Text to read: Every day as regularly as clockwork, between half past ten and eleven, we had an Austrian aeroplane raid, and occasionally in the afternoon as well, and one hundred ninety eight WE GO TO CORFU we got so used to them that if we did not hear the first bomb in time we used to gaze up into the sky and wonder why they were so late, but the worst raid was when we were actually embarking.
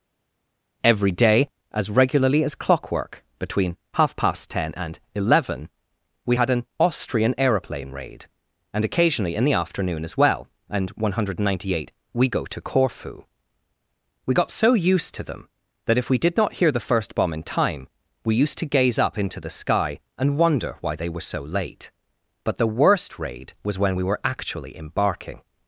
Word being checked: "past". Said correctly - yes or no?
yes